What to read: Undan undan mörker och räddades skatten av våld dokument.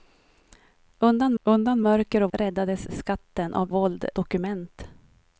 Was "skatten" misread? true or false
false